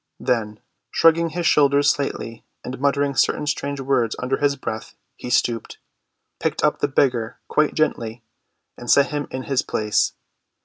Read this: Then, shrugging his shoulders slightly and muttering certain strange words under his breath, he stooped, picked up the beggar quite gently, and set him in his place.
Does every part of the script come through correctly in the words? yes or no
yes